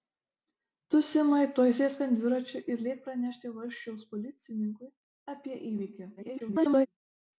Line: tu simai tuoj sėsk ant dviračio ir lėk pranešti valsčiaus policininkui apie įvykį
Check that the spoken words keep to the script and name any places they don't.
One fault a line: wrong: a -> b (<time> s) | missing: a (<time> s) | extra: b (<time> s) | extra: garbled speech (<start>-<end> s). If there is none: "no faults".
extra: garbled speech (6.2-6.9 s)